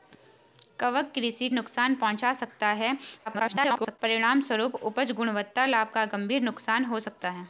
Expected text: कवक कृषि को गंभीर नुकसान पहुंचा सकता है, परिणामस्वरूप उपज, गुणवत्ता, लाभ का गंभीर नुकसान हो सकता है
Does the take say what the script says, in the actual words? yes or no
no